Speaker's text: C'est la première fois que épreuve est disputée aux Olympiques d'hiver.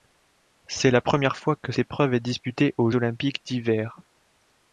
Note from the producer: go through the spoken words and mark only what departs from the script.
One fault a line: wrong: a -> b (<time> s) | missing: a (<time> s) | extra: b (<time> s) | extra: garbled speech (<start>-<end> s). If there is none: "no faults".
no faults